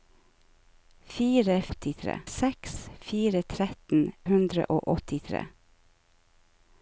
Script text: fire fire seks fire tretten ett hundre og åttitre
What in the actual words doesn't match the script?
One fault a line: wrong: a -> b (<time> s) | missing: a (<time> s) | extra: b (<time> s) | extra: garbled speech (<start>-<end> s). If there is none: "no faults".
wrong: fire -> åttitre (1.7 s)
missing: ett (4.0 s)